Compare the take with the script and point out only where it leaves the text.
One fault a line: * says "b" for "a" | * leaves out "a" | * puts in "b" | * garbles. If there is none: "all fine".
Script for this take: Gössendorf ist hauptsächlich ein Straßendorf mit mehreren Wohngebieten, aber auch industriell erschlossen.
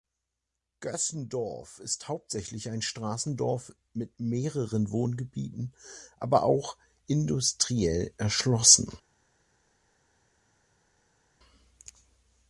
all fine